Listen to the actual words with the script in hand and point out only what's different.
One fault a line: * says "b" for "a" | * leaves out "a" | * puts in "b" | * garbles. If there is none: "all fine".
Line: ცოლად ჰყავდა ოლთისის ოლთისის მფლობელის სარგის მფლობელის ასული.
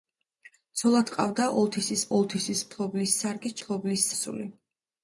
all fine